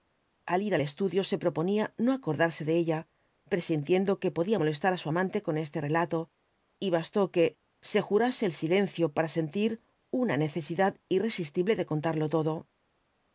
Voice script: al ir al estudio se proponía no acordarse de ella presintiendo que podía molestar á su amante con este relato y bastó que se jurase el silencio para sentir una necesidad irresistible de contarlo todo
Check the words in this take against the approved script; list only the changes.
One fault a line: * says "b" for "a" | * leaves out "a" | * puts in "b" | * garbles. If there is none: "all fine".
all fine